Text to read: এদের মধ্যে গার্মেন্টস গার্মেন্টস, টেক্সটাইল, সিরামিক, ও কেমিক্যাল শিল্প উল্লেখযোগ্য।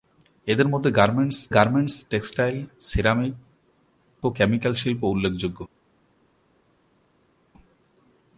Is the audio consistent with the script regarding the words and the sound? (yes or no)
yes